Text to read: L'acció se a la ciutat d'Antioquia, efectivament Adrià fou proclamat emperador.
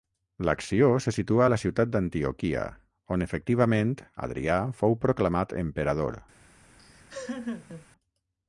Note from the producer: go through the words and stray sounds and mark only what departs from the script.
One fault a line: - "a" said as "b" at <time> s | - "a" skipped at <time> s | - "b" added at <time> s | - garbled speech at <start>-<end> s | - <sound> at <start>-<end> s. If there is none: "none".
- "situa" added at 1.2 s
- "on" added at 3.1 s
- laugh at 6.8-7.9 s